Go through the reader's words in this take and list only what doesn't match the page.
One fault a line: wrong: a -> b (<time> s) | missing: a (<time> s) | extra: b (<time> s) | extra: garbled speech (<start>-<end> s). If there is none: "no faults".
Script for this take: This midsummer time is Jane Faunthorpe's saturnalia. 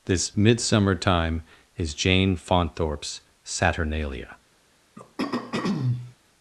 no faults